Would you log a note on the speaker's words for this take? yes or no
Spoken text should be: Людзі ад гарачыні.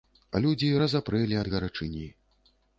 yes